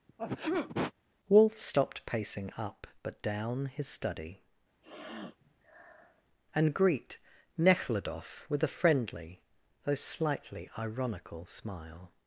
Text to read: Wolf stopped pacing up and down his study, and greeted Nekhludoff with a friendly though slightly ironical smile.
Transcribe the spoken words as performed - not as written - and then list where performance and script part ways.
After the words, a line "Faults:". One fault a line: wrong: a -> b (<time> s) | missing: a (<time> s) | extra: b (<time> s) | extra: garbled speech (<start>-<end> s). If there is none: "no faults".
Wolf stopped pacing up but down his study, and greet Nekhludoff with a friendly though slightly ironical smile.
Faults:
wrong: and -> but (3.0 s)
wrong: greeted -> greet (6.7 s)